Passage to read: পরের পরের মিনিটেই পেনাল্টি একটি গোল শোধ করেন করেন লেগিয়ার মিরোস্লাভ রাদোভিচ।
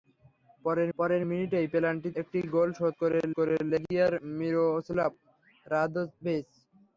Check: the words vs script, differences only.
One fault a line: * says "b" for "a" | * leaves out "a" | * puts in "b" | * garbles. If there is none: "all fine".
all fine